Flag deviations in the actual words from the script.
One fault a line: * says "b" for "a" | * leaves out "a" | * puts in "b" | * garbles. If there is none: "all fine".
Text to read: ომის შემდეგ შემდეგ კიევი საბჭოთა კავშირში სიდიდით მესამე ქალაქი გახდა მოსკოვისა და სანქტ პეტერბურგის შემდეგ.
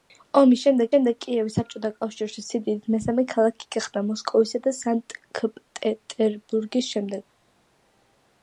all fine